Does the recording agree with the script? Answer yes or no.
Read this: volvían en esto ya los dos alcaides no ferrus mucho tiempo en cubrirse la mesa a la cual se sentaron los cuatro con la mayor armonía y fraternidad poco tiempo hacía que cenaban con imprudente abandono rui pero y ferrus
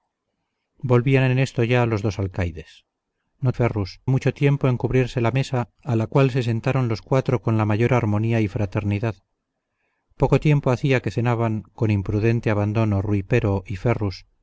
yes